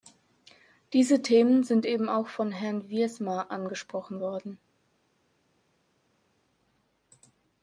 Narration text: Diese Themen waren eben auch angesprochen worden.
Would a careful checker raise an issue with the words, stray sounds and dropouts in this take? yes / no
yes